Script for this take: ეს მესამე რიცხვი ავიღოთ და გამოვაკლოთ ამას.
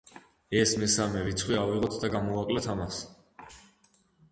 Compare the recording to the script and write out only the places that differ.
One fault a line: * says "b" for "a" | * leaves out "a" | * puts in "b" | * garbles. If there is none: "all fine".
all fine